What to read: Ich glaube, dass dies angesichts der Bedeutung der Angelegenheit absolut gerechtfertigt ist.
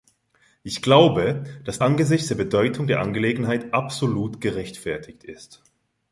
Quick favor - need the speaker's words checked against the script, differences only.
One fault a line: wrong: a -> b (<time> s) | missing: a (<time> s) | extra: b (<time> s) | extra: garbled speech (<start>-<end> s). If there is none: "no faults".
missing: dies (1.8 s)